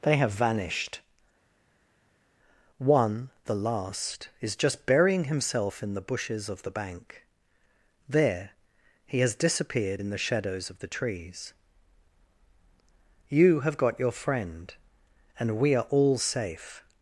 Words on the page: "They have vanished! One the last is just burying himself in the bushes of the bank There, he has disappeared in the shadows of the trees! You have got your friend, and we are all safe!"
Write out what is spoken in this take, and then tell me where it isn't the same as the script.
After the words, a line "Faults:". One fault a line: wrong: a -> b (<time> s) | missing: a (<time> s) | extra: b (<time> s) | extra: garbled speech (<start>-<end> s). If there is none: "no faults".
"They have vanished! One the last is just burying himself in the bushes of the bank There, he has disappeared in the shadows of the trees! You have got your friend, and we are all safe!"
Faults:
no faults